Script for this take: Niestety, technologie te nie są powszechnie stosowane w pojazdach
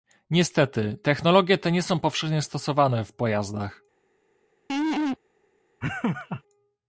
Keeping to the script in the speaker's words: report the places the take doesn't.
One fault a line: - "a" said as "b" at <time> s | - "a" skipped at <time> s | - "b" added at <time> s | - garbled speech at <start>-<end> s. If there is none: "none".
none